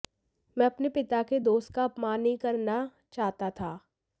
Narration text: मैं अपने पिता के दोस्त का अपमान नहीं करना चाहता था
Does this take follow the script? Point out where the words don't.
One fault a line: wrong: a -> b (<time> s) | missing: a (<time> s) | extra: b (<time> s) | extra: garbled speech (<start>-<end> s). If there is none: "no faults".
no faults